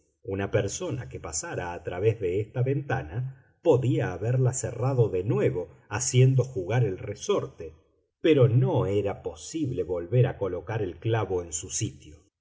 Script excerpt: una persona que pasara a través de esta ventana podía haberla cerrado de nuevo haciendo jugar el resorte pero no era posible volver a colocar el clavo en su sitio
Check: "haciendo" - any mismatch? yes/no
no